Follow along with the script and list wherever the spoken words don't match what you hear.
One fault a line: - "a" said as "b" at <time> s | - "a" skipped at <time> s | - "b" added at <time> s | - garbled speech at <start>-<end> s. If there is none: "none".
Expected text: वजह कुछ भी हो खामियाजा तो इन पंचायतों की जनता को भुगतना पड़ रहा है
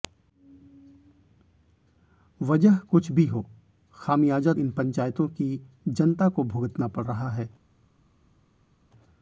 - "तो" skipped at 4.5 s